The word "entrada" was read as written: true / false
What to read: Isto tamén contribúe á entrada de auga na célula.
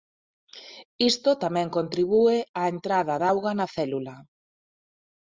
true